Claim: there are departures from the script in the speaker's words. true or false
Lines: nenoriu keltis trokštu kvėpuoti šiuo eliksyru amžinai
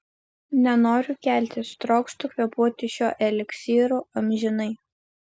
false